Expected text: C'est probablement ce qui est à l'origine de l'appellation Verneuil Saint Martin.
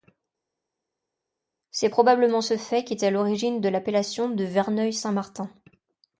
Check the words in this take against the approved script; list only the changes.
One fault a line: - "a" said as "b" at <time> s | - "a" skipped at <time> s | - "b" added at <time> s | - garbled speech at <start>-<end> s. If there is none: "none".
- "fait" added at 2.6 s
- "de" added at 4.3 s